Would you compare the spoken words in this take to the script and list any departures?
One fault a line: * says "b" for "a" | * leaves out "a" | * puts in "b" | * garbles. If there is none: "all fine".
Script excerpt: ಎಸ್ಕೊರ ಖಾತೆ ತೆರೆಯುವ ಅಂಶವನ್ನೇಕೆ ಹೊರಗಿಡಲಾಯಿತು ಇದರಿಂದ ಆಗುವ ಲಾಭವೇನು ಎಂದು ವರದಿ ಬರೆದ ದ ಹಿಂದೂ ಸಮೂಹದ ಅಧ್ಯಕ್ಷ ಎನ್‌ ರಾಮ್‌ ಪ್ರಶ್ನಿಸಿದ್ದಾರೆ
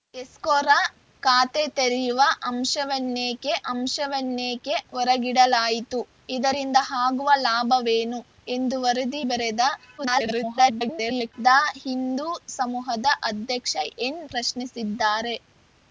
* puts in "ಅಂಶವನ್ನೇಕೆ"
* garbles
* leaves out "ರಾಮ್"